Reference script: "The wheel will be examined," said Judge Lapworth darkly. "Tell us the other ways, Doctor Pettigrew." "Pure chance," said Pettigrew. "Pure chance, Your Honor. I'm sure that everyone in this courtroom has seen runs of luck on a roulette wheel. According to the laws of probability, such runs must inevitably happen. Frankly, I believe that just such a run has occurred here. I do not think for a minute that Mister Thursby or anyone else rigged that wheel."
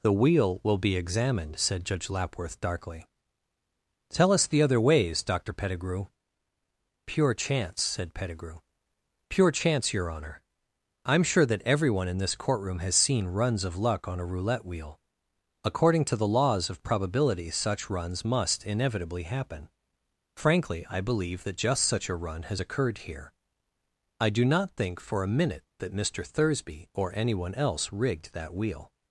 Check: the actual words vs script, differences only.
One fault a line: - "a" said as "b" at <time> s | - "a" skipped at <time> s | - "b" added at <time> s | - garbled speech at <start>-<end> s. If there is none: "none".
none